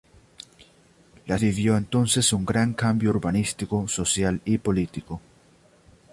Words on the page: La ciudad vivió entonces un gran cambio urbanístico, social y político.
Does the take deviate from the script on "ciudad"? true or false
true